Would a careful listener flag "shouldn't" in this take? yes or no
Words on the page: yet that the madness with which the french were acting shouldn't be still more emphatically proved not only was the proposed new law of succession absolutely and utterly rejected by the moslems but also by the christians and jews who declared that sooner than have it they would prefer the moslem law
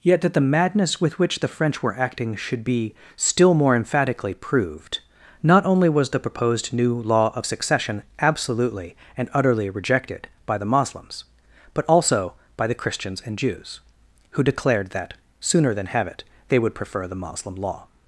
yes